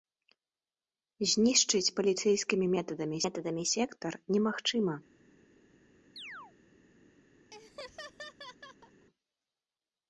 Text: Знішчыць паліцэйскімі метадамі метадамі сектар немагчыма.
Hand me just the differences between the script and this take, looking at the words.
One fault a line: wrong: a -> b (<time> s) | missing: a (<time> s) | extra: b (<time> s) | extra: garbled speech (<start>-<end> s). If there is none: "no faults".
no faults